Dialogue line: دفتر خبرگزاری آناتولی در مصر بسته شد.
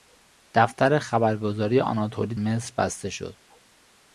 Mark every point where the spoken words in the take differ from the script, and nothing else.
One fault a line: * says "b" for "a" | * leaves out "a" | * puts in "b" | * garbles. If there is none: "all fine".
* leaves out "در"